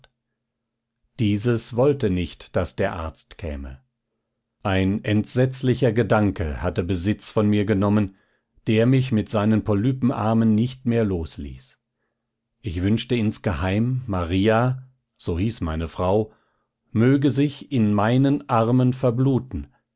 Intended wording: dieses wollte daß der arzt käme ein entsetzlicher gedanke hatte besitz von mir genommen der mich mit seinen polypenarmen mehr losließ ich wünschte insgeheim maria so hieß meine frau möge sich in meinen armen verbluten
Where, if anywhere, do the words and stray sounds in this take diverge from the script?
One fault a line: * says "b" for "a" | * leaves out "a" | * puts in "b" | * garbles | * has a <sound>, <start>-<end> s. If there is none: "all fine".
* puts in "nicht"
* puts in "nicht"